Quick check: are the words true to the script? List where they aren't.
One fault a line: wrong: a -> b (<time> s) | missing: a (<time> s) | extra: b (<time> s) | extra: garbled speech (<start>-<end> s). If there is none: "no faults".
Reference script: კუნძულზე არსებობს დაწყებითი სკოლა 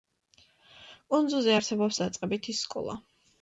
no faults